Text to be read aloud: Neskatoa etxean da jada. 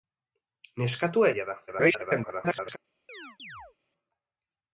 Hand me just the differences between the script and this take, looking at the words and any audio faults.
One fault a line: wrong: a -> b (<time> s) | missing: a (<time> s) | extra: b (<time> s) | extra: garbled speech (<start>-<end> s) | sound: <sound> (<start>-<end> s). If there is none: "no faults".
missing: etxean (1.3 s)
extra: garbled speech (1.7-2.8 s)
sound: chirp (3.1-3.8 s)